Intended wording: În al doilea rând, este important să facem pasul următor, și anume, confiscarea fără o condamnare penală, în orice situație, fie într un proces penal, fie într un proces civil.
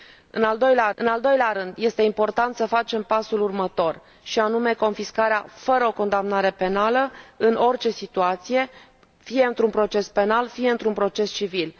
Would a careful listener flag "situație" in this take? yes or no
no